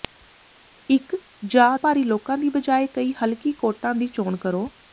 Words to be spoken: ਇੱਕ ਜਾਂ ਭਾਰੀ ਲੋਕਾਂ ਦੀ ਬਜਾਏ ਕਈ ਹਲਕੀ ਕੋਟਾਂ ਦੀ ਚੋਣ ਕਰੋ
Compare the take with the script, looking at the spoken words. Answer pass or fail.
pass